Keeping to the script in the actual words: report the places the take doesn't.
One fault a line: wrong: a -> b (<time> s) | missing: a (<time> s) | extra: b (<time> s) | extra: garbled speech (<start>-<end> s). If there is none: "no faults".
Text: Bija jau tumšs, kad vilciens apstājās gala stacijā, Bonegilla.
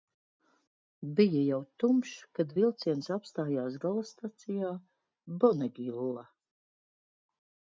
no faults